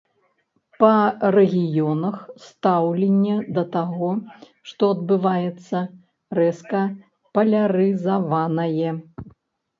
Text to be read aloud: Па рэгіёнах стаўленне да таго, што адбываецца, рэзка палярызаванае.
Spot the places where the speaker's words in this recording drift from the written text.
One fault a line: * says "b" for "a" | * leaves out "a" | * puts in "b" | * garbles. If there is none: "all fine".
all fine